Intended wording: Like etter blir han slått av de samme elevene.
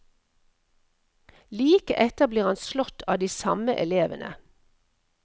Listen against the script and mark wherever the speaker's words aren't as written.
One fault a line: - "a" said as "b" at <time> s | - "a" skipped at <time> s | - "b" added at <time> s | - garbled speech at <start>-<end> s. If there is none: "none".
none